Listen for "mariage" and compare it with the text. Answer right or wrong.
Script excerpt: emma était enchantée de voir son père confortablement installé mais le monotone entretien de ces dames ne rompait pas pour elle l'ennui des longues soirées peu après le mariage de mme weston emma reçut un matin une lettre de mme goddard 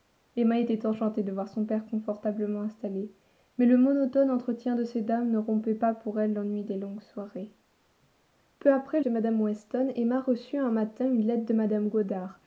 wrong